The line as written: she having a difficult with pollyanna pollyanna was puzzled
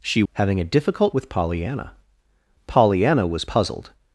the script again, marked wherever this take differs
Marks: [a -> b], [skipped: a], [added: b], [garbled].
she having a difficult with pollyanna pollyanna was puzzled